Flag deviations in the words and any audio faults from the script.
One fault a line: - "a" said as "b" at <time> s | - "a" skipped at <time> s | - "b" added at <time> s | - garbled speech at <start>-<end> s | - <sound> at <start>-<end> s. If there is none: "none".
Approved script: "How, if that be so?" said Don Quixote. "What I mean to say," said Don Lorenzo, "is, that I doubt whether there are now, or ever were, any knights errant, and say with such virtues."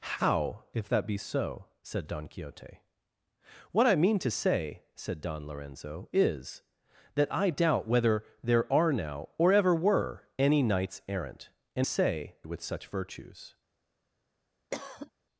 - cough at 14.7-15.1 s